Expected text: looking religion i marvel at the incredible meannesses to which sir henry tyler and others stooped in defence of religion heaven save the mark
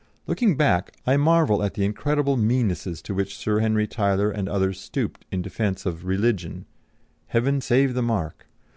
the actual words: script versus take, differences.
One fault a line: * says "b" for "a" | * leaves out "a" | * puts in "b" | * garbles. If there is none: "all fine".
* says "back" for "religion"